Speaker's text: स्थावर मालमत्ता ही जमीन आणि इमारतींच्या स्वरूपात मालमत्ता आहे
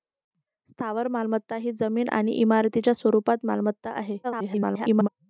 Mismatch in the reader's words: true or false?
true